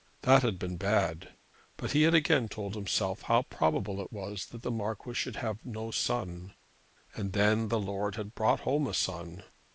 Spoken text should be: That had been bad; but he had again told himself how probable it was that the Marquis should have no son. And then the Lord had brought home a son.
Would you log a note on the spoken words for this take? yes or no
no